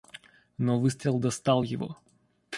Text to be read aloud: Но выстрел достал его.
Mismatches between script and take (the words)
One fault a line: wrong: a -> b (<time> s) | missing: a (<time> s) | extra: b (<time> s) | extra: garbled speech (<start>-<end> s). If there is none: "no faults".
no faults